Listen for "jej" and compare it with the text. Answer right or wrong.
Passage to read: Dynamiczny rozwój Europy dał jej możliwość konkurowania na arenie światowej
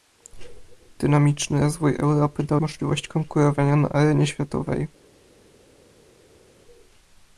wrong